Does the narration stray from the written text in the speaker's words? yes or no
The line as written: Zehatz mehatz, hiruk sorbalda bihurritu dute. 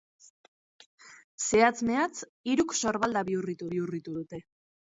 yes